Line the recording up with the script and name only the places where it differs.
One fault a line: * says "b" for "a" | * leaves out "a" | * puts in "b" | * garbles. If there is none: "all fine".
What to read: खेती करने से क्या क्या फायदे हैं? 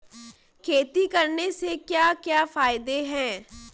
all fine